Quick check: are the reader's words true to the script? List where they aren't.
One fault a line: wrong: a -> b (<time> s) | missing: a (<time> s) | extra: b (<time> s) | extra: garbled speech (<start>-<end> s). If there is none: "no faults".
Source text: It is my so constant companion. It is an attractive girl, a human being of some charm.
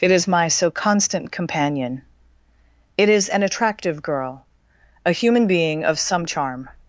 no faults